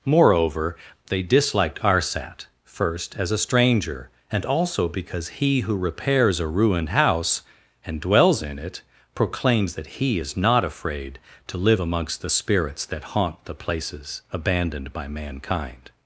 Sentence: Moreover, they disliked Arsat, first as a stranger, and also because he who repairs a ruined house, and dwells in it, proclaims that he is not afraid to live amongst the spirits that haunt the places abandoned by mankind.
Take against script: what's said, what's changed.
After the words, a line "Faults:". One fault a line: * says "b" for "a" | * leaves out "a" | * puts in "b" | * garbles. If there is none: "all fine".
Moreover, they disliked Arsat, first as a stranger, and also because he who repairs a ruined house, and dwells in it, proclaims that he is not afraid to live amongst the spirits that haunt the places abandoned by mankind.
Faults:
all fine